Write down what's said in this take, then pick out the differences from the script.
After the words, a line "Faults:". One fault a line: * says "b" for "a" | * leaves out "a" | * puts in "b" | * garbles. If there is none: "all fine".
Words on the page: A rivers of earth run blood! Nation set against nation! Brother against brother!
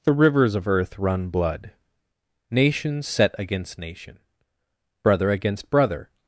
The rivers of earth run blood! Nation set against nation! Brother against brother!
Faults:
* says "The" for "A"